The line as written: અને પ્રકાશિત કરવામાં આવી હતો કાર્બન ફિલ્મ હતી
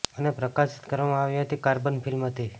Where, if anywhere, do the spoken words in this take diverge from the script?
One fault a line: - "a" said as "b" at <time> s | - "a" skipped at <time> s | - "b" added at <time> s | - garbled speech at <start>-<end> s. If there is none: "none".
- "હતો" said as "હતી" at 1.4 s